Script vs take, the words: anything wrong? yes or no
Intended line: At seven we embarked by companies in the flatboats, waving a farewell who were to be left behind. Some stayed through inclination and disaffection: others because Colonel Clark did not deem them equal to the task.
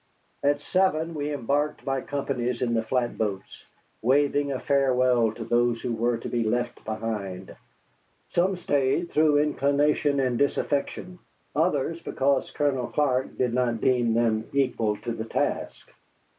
yes